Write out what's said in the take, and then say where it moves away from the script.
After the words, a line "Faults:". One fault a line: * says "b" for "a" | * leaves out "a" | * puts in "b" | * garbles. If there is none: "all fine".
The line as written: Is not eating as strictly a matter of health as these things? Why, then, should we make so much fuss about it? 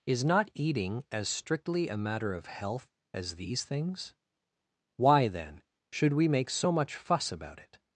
Is not eating as strictly a matter of health as these things? Why, then, should we make so much fuss about it?
Faults:
all fine